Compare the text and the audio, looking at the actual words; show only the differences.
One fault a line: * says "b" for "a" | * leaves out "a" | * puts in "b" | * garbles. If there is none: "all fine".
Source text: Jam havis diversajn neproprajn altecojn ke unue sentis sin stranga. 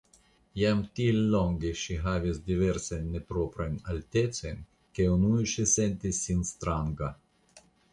* puts in "tiel longe ŝi"
* puts in "ŝi"